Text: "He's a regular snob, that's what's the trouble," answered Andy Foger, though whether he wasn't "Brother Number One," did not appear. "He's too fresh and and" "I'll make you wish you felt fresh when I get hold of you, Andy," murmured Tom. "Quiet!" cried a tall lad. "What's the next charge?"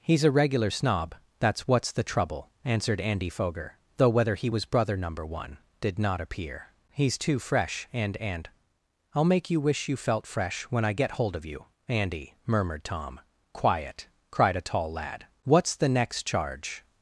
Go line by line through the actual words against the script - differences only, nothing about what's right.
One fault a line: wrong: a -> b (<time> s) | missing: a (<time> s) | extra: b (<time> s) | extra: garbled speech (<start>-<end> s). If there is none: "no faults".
wrong: wasn't -> was (4.5 s)